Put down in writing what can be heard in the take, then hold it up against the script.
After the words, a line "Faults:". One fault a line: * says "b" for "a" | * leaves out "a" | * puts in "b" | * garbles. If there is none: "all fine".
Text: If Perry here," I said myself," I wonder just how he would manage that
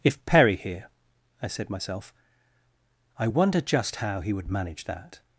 If Perry here," I said myself," I wonder just how he would manage that
Faults:
all fine